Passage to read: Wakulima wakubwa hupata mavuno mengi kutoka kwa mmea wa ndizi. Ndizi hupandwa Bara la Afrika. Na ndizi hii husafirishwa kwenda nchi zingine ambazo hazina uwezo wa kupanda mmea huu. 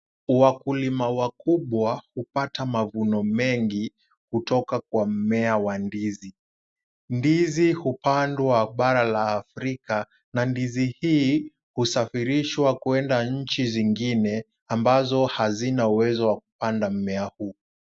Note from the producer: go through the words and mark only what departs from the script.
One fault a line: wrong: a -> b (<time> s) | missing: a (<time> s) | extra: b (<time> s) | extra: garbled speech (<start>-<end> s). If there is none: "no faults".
no faults